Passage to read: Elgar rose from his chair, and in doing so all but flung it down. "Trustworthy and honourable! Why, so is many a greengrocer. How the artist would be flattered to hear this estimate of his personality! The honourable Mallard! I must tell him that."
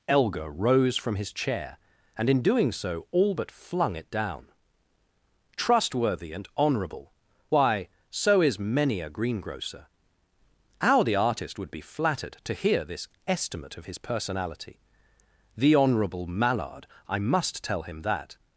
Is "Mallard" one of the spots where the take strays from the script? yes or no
no